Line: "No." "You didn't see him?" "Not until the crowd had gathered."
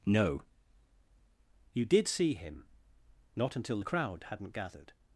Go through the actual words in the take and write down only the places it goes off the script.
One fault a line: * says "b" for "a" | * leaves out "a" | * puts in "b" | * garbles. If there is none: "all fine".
* says "did" for "didn't"
* says "hadn't" for "had"